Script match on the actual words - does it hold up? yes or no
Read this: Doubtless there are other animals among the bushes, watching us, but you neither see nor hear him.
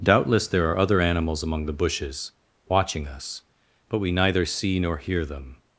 no